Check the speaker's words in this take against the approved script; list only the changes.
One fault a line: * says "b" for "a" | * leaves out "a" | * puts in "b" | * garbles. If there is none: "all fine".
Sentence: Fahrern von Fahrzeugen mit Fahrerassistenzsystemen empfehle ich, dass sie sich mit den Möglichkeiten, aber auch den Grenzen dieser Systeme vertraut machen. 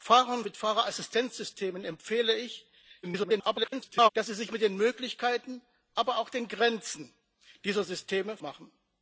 * leaves out "von Fahrzeugen"
* garbles
* leaves out "vertraut"